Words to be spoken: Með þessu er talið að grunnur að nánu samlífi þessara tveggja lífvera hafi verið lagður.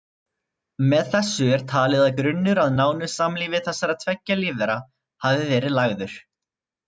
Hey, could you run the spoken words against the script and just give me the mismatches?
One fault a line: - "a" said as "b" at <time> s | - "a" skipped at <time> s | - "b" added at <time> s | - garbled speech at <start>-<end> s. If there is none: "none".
none